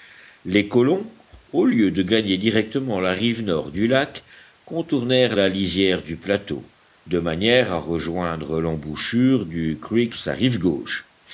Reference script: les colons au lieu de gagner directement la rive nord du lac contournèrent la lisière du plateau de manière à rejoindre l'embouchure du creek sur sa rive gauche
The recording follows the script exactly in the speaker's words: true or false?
false